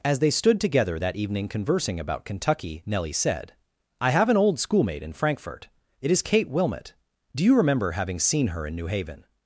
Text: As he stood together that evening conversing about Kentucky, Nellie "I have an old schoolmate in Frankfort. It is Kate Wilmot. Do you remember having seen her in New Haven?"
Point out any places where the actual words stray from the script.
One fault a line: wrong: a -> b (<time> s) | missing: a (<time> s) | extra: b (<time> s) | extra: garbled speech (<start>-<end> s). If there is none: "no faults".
wrong: he -> they (0.2 s)
extra: said (3.1 s)